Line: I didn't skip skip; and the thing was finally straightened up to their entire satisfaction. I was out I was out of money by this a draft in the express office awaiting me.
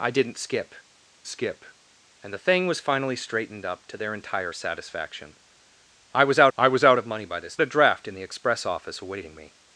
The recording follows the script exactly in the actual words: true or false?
true